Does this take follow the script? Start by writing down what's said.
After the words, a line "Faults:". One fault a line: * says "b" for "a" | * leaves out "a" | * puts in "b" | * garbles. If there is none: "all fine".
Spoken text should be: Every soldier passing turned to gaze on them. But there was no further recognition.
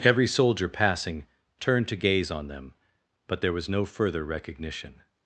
Every soldier passing turned to gaze on them. But there was no further recognition.
Faults:
all fine